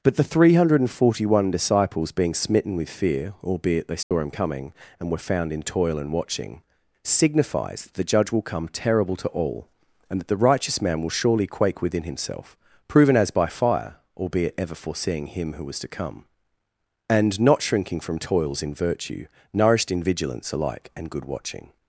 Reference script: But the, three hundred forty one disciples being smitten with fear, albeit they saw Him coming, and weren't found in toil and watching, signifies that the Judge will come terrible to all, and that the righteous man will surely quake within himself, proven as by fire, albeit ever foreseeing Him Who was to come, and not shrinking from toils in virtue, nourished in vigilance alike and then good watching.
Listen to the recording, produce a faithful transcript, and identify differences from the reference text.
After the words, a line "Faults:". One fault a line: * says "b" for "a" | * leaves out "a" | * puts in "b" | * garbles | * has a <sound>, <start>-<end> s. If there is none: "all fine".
But the, three hundred forty one disciples being smitten with fear, albeit they saw Him coming, and were found in toil and watching, signifies that the Judge will come terrible to all, and that the righteous man will surely quake within himself, proven as by fire, albeit ever foreseeing Him Who was to come, and not shrinking from toils in virtue, nourished in vigilance alike and good watching.
Faults:
* has a dropout, 4.0-4.1 s
* says "were" for "weren't"
* leaves out "then"